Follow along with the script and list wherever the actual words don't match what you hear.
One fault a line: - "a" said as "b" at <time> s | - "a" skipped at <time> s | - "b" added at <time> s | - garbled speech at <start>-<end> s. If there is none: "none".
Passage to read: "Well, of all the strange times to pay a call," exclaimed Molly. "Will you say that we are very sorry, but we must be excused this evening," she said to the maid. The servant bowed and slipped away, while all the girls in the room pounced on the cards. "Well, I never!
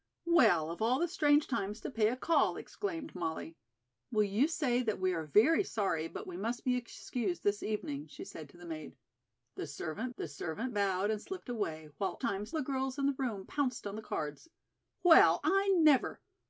- "the servant" added at 10.1 s
- "all" said as "times" at 12.2 s